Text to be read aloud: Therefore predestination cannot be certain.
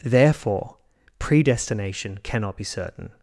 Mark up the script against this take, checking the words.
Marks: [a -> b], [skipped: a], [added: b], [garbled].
Therefore predestination cannot be certain.